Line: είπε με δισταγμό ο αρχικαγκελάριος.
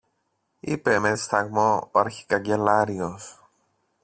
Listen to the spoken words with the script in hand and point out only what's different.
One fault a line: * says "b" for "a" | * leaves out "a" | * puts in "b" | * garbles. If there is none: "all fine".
all fine